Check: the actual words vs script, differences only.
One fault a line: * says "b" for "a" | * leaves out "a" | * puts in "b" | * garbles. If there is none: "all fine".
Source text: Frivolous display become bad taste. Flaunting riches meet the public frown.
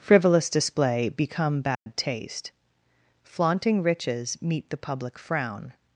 all fine